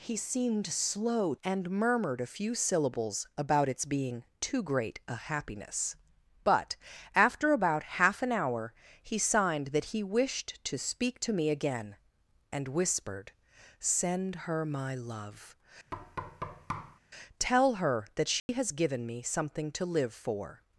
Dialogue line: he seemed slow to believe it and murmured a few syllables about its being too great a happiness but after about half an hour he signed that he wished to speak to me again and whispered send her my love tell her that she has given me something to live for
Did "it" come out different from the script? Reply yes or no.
yes